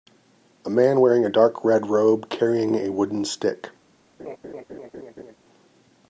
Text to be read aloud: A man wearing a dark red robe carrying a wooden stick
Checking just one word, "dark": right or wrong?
right